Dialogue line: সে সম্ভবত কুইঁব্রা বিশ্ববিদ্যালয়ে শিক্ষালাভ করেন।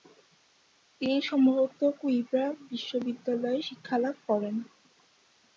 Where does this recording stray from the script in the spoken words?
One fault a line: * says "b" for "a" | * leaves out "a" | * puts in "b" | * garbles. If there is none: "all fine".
* says "তিনি" for "সে"